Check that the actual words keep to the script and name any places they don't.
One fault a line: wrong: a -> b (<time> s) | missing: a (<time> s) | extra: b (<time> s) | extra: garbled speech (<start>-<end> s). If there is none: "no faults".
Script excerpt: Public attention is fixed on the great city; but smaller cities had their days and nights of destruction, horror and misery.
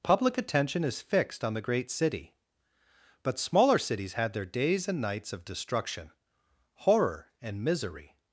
no faults